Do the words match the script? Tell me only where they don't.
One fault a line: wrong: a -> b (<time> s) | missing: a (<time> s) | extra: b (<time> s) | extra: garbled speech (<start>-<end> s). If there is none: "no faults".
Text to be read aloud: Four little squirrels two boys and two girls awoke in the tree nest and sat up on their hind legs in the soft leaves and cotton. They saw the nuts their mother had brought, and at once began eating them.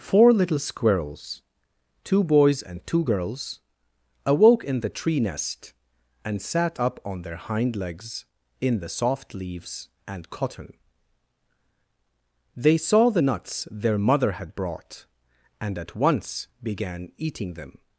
no faults